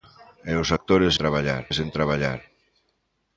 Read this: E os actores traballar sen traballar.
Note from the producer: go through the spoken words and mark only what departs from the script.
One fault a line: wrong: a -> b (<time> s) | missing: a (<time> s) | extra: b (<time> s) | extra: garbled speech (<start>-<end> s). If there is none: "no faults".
no faults